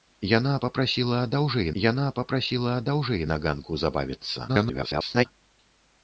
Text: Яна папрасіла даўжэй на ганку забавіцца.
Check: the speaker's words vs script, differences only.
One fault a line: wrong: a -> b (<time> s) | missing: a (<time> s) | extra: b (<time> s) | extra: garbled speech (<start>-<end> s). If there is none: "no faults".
extra: яна папрасіла даўжэй (1.8 s)
extra: garbled speech (4.5-5.3 s)